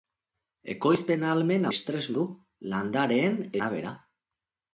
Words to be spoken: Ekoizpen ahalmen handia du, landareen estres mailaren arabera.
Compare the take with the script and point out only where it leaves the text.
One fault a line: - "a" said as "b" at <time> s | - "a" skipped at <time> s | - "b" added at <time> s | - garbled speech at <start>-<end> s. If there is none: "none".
- "handia" said as "estres" at 1.7 s
- "estres mailaren" skipped at 3.4 s